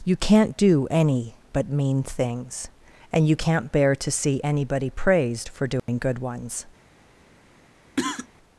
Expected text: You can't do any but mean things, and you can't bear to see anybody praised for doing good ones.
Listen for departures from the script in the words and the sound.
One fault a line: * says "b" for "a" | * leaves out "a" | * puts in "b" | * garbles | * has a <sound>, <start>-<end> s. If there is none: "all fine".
* has a dropout, 5.8-5.9 s
* has a cough, 8.0-8.3 s